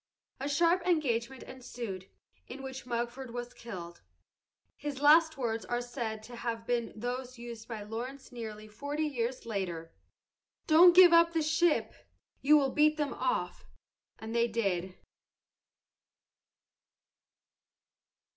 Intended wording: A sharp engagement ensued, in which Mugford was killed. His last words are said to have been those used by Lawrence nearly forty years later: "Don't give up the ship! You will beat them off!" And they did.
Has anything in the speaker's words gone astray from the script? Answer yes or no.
no